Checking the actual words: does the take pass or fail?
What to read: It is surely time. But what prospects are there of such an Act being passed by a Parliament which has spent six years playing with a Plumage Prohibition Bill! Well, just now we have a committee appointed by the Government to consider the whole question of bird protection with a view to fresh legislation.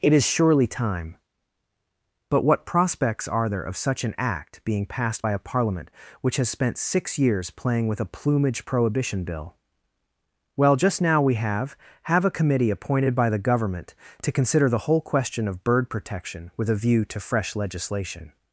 fail